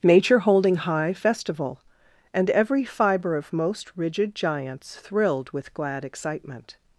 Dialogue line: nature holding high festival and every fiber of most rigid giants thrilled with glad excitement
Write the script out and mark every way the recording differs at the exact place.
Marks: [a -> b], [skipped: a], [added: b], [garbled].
nature holding high festival and every fiber of most rigid giants thrilled with glad excitement